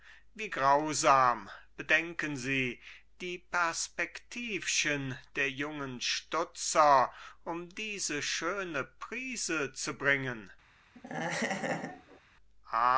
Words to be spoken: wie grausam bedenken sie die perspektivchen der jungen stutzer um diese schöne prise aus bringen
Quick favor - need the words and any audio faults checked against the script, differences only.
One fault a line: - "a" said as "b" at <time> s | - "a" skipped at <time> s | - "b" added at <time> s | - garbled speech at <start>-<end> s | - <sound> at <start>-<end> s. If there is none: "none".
- "aus" said as "zu" at 9.7 s
- laugh at 10.9-12.2 s